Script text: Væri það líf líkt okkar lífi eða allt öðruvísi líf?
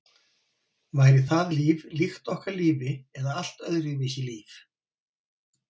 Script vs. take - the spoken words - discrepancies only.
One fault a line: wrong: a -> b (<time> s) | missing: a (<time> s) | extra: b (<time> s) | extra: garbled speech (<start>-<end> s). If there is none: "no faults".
no faults